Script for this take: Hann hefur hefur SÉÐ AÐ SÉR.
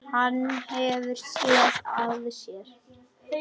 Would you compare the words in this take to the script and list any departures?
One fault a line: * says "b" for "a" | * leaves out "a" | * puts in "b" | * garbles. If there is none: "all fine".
* leaves out "hefur"